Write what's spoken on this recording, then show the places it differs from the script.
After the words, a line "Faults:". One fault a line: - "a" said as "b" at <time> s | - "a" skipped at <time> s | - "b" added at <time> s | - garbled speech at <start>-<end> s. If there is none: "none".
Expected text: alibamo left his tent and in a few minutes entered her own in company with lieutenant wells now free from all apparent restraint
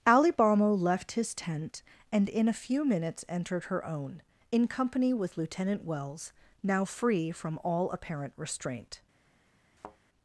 alibamo left his tent and in a few minutes entered her own in company with lieutenant wells now free from all apparent restraint
Faults:
none